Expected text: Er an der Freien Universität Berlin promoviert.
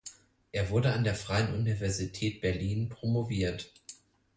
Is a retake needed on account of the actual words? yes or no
yes